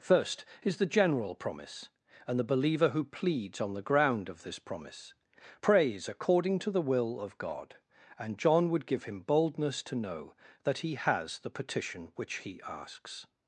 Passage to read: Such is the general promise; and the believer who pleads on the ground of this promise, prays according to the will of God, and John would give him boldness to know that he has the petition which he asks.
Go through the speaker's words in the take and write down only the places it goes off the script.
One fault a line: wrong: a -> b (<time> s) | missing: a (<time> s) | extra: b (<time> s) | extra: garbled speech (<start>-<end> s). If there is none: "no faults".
wrong: Such -> First (0.0 s)